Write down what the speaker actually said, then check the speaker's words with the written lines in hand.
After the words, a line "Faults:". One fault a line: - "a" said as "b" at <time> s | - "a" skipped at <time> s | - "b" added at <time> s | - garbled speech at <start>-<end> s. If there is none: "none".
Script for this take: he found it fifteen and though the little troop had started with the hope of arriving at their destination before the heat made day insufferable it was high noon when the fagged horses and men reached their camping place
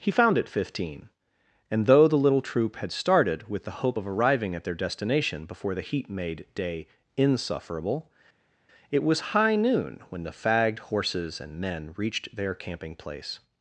he found it fifteen and though the little troop had started with the hope of arriving at their destination before the heat made day insufferable it was high noon when the fagged horses and men reached their camping place
Faults:
none